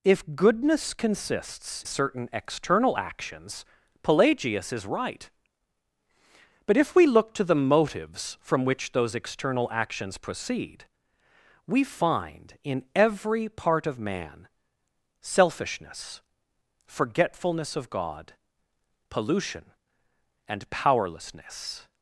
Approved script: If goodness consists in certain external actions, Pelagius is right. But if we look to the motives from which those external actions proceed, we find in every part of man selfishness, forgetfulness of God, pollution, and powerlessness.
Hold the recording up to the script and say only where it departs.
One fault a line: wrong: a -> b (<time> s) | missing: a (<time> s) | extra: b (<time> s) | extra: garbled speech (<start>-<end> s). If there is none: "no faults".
missing: in (1.9 s)